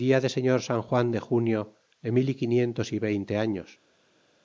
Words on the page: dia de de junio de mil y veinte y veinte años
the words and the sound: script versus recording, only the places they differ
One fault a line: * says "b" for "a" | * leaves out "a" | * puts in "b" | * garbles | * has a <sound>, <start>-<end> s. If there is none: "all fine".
* puts in "señor san juan"
* says "quinientos" for "veinte"